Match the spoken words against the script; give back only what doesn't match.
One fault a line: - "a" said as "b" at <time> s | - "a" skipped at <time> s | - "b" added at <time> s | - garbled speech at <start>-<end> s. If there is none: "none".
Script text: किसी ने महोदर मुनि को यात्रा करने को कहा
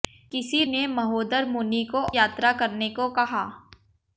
none